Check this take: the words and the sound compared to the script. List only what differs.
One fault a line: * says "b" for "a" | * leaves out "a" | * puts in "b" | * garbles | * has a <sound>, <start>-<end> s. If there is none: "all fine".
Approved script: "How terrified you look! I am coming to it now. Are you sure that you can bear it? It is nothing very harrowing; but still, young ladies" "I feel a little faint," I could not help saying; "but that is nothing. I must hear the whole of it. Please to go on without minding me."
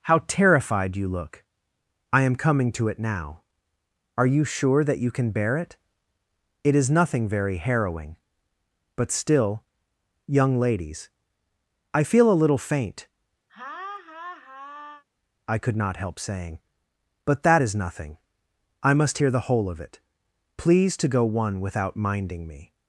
* has a laugh, 13.5-15.0 s
* says "one" for "on"